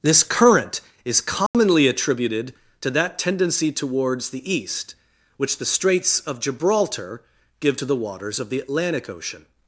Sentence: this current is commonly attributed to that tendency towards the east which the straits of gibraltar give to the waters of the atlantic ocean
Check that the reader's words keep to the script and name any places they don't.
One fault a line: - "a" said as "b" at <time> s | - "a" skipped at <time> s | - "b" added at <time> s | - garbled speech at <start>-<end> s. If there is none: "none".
none